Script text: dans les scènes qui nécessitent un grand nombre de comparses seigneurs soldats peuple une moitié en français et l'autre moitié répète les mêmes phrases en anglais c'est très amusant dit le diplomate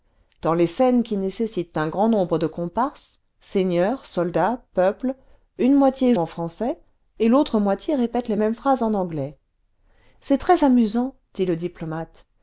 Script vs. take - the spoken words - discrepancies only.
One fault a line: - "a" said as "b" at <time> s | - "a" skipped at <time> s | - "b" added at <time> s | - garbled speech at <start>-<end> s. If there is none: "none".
none